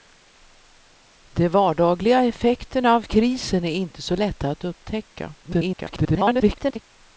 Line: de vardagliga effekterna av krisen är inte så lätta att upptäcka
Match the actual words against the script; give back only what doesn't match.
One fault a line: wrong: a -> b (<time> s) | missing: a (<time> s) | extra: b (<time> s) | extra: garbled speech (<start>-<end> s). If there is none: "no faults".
extra: garbled speech (5.4-6.9 s)